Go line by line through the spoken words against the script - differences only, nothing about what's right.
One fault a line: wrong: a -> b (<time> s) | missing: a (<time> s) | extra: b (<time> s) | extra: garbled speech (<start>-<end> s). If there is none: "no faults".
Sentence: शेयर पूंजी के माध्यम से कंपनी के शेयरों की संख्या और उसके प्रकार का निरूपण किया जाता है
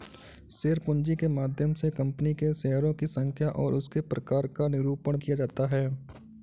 no faults